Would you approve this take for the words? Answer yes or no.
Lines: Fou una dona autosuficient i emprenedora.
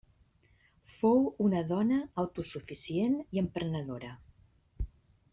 yes